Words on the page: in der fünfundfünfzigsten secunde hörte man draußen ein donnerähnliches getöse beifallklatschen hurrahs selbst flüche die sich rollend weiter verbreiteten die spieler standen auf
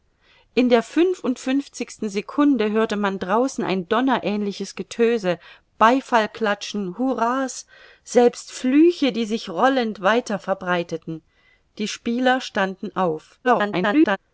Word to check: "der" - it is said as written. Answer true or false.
true